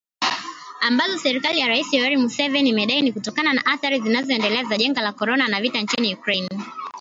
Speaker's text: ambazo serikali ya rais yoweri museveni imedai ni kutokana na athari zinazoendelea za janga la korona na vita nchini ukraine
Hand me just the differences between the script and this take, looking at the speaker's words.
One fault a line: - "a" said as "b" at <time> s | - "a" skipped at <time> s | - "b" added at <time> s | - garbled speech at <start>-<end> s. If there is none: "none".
none